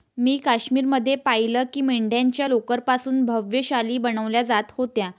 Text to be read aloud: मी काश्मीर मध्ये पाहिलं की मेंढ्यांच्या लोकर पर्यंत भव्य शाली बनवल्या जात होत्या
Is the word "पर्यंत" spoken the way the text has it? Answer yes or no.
no